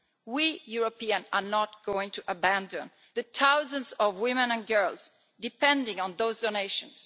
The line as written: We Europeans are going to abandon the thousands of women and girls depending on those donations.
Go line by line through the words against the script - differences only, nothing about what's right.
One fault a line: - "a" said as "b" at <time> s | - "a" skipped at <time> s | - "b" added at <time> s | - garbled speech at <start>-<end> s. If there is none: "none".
- "not" added at 1.4 s